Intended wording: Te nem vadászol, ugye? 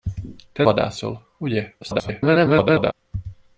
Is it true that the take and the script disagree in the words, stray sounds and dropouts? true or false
true